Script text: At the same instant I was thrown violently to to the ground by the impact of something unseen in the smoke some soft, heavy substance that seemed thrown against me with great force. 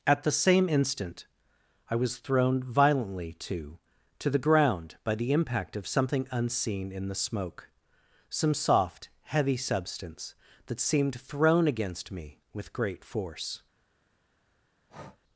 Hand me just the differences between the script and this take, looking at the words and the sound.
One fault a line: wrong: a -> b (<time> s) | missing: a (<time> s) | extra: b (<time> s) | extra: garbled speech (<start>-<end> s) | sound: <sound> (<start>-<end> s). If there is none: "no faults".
sound: breath (14.9-15.2 s)